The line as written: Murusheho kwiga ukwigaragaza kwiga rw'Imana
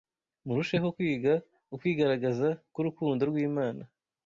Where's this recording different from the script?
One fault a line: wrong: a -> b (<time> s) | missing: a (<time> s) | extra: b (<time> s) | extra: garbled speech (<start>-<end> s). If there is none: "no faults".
wrong: kwiga -> k'urukundo (2.7 s)